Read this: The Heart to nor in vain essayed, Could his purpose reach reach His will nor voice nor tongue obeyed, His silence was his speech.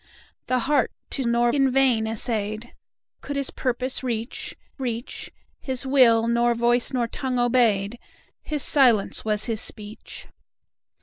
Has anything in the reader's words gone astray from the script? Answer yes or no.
no